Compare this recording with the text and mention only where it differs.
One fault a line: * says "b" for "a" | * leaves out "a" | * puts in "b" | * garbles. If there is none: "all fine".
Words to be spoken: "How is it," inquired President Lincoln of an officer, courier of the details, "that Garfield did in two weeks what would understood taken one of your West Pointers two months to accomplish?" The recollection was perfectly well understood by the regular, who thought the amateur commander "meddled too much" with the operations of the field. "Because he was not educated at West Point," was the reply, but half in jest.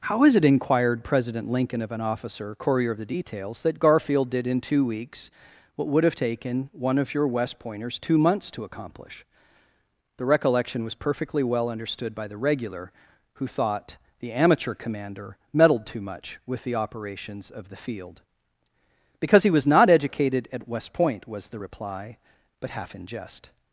* says "have" for "understood"